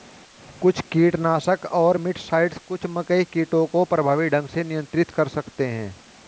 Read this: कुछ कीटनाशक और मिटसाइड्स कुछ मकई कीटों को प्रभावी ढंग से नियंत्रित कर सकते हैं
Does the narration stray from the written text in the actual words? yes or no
no